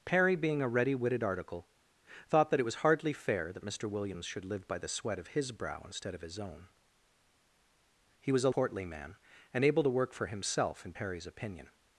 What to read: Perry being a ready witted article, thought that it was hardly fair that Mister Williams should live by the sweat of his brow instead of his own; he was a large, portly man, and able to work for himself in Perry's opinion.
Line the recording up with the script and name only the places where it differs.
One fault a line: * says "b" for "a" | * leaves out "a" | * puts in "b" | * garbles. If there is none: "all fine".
* leaves out "large"